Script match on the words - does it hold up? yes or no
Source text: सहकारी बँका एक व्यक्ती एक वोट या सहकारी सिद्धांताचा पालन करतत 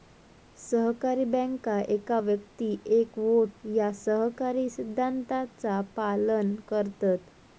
yes